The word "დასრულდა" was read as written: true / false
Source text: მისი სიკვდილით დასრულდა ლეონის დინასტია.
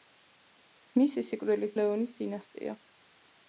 false